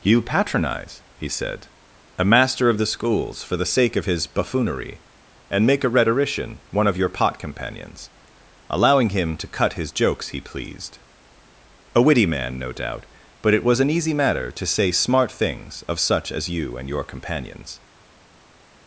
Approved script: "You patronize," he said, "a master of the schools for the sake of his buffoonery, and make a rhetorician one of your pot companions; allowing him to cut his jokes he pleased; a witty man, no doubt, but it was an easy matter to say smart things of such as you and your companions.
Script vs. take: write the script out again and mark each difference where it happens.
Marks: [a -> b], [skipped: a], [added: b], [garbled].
"You patronize," he said, "a master of the schools for the sake of his buffoonery, and make a rhetorician one of your pot companions; allowing him to cut his jokes he pleased; a witty man, no doubt, but it was an easy matter to say smart things of such as you and your companions.